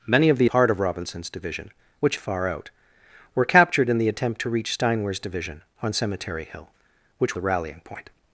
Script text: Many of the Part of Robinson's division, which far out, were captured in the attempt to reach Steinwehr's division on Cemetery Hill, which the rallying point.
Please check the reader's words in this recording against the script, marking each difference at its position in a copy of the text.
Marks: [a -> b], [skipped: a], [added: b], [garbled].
Many of the Part of Robinson's division, which far out, were captured in the attempt to reach Steinwehr's division on Cemetery Hill, which the rallying point.